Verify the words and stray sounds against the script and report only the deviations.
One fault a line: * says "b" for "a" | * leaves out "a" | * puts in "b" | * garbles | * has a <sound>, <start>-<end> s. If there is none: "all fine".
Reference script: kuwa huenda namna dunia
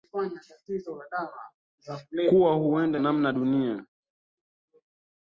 all fine